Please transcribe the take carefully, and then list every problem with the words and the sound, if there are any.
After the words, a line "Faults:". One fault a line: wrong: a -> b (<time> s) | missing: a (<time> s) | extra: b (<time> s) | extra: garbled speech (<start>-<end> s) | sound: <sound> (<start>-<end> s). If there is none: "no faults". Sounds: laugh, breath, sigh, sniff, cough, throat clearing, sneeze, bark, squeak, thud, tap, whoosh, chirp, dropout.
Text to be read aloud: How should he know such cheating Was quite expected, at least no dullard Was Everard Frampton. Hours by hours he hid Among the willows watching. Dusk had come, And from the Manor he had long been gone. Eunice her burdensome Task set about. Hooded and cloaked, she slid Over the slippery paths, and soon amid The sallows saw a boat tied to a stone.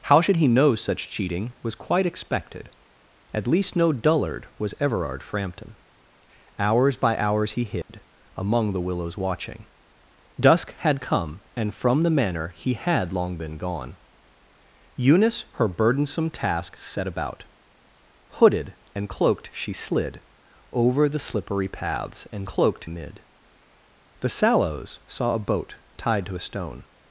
How should he know such cheating Was quite expected, at least no dullard Was Everard Frampton. Hours by hours he hid Among the willows watching. Dusk had come, And from the Manor he had long been gone. Eunice her burdensome Task set about. Hooded and cloaked, she slid Over the slippery paths, and cloaked amid The sallows saw a boat tied to a stone.
Faults:
sound: dropout (7.8-7.9 s)
wrong: soon -> cloaked (22.4 s)